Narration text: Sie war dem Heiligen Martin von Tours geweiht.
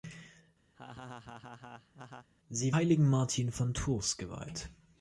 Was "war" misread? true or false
true